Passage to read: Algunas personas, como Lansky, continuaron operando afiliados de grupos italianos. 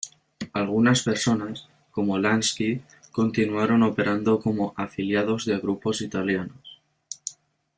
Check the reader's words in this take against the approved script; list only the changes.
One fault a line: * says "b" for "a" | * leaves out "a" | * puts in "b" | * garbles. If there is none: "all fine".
* puts in "como"